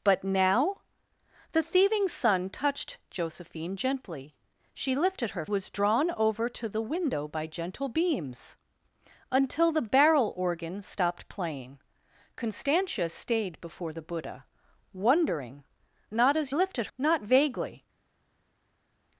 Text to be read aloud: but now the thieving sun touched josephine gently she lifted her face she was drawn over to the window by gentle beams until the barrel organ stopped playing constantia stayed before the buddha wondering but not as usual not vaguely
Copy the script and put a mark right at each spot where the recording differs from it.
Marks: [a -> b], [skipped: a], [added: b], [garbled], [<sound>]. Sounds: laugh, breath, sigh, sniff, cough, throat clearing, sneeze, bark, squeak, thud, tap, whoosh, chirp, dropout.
but now the thieving sun touched josephine gently she lifted her [skipped: face she] was drawn over to the window by gentle beams until the barrel organ stopped playing constantia stayed before the buddha wondering [skipped: but] not as [usual -> lifted] not vaguely